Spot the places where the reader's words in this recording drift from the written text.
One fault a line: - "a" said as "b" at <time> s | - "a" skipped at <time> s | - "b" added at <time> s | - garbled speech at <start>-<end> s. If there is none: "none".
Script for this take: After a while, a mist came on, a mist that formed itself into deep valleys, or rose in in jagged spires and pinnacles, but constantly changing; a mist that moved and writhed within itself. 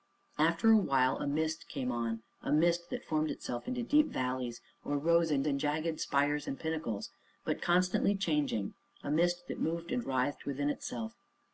none